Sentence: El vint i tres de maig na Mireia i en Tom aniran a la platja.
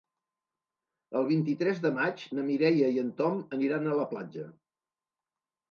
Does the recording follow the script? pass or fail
pass